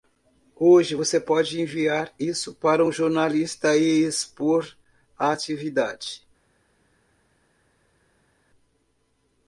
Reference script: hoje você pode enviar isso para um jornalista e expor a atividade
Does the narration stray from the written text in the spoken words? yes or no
no